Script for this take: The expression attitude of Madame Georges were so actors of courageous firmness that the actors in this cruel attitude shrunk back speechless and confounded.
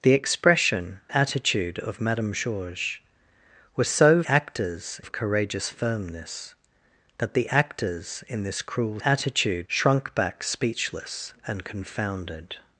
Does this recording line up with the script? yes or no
yes